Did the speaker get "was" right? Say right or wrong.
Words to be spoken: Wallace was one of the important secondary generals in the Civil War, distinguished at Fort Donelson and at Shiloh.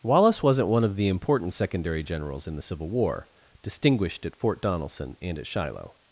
wrong